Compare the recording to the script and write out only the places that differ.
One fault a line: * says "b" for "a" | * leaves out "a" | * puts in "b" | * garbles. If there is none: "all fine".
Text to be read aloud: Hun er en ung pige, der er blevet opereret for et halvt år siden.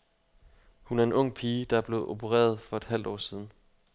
all fine